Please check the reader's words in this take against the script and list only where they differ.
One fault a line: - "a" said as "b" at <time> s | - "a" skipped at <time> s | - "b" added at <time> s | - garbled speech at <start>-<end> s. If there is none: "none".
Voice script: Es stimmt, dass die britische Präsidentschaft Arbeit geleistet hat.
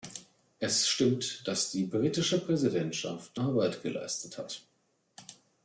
none